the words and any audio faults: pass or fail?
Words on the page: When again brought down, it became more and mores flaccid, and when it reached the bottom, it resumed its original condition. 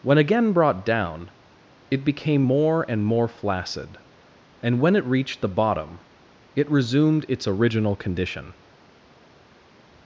fail